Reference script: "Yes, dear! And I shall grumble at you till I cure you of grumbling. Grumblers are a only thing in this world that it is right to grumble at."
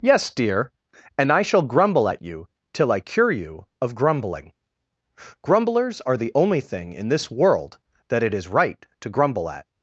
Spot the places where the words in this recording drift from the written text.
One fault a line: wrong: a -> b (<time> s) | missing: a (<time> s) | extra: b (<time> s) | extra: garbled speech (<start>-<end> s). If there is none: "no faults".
wrong: a -> the (6.2 s)